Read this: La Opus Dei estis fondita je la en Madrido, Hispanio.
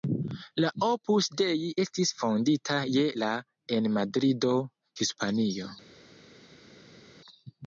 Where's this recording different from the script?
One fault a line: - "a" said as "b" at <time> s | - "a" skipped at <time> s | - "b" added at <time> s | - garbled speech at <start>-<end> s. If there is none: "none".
none